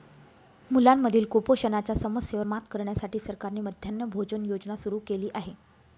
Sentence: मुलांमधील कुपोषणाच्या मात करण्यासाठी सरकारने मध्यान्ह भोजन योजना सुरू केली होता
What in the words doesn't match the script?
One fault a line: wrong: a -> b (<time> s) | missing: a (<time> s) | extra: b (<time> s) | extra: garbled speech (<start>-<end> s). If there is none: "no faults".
extra: समस्येवर (1.9 s)
wrong: होता -> आहे (5.3 s)